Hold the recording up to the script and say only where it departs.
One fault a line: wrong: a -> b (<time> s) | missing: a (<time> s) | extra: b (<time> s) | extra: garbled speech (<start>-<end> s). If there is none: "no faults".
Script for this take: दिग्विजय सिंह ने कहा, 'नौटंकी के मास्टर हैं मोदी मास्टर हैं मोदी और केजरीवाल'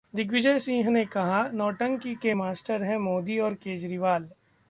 missing: मास्टर हैं मोदी (3.4 s)